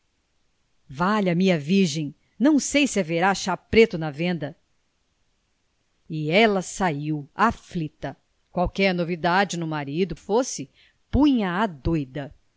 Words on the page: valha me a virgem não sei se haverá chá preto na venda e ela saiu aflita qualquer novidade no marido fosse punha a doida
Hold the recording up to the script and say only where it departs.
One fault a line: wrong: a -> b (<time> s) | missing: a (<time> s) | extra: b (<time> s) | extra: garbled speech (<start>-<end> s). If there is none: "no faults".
no faults